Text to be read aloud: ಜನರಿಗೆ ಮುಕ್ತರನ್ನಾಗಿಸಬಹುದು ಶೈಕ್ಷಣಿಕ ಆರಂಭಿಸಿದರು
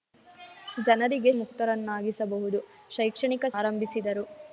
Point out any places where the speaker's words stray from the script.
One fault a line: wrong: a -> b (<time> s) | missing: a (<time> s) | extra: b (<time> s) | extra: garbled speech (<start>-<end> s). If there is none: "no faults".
no faults